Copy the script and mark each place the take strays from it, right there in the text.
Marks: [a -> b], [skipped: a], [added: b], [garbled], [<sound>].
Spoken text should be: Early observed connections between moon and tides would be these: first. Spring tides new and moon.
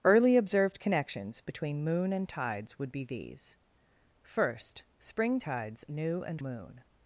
Early observed connections between moon and tides would be these: first. Spring tides new and moon.